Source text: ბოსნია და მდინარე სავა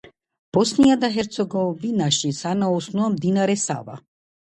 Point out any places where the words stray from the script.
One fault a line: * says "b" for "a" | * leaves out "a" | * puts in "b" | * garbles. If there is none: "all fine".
* puts in "ჰერცეგოვინაში სანაოსნოა"